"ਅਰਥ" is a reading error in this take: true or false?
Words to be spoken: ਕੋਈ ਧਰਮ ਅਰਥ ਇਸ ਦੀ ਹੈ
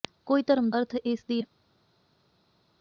false